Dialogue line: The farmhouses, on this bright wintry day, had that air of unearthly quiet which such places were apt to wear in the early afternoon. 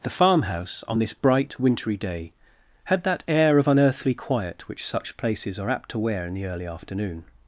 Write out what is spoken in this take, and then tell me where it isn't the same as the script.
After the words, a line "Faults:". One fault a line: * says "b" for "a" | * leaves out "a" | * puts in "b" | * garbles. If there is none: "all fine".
The farmhouse, on this bright wintry day, had that air of unearthly quiet which such places are apt to wear in the early afternoon.
Faults:
* says "farmhouse" for "farmhouses"
* says "are" for "were"